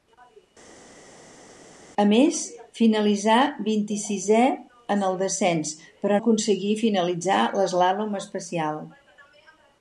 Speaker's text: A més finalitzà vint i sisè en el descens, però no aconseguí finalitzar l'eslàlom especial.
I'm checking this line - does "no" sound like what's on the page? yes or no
no